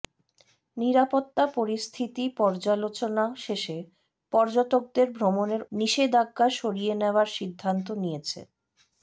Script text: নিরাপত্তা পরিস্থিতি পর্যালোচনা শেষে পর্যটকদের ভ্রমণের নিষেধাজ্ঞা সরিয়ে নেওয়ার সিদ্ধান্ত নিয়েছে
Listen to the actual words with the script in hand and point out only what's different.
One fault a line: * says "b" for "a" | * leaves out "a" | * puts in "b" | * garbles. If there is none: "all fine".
all fine